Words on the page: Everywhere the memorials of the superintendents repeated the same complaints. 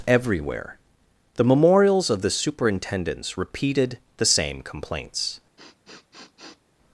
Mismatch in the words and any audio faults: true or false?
true